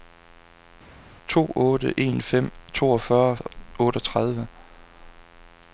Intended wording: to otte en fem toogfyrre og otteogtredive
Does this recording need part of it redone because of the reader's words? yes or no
no